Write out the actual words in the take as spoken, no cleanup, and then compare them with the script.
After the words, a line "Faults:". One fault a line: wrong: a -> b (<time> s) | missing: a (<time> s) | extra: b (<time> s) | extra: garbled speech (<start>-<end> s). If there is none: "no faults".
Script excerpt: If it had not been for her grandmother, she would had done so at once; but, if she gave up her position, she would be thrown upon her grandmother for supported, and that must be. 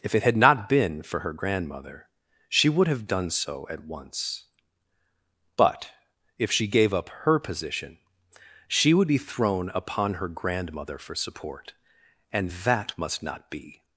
If it had not been for her grandmother, she would have done so at once; but, if she gave up her position, she would be thrown upon her grandmother for support, and that must not be.
Faults:
wrong: had -> have (2.9 s)
wrong: supported -> support (11.2 s)
extra: not (13.2 s)